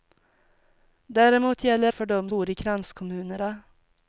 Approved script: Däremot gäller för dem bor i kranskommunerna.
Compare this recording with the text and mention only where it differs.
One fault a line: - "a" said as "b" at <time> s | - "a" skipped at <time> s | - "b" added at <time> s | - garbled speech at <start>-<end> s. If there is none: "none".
none